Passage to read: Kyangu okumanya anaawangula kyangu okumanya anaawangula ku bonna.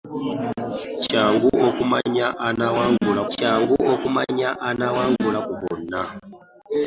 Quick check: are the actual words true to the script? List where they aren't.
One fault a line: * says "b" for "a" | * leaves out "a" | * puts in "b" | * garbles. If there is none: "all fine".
all fine